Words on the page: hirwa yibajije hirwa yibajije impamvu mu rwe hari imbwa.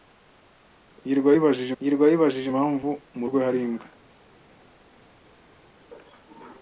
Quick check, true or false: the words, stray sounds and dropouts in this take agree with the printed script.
true